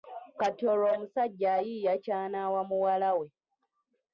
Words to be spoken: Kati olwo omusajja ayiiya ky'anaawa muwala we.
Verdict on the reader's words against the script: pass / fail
pass